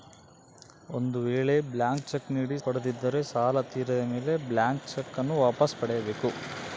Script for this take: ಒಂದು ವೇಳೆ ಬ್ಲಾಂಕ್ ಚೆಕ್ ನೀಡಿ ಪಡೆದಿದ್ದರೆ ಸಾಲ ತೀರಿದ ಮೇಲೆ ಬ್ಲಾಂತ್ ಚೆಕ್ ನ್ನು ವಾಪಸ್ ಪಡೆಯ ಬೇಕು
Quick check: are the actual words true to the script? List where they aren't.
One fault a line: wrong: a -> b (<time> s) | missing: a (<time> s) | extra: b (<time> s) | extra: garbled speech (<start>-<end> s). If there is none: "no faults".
no faults